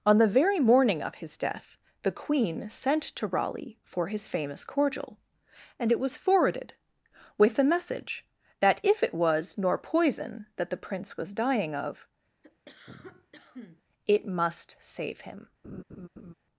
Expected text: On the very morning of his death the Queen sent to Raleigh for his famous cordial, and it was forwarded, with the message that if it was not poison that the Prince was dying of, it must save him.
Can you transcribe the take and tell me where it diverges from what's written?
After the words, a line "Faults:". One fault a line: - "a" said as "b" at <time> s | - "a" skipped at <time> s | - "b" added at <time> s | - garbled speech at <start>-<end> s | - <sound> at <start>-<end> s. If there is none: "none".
On the very morning of his death the Queen sent to Raleigh for his famous cordial, and it was forwarded, with the message that if it was nor poison that the Prince was dying of, it must save him.
Faults:
- "not" said as "nor" at 9.6 s
- cough at 12.4-13.8 s
- laugh at 15.6-16.3 s